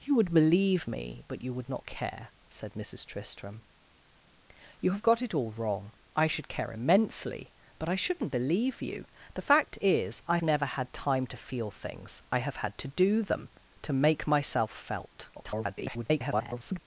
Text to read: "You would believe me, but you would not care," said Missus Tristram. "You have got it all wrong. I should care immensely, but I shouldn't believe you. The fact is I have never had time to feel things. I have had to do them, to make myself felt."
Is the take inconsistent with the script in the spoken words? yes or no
yes